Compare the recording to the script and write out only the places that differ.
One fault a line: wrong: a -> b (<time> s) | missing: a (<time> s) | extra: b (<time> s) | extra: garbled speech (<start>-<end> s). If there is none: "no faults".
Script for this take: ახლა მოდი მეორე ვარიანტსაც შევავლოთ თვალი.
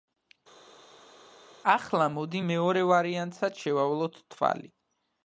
no faults